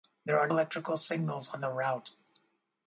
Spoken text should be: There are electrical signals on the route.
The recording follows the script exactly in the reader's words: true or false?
true